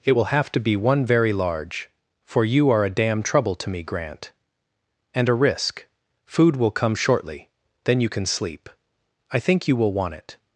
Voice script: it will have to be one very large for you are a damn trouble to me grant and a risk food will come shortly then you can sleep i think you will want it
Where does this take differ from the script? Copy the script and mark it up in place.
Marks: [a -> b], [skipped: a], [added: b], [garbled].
it will have to be one very large for you are a damn trouble to me grant and a risk food will come shortly then you can sleep i think you will want it